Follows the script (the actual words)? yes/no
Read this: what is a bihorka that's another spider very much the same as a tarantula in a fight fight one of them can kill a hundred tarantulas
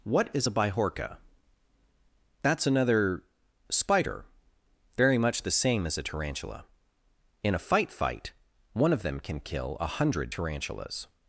yes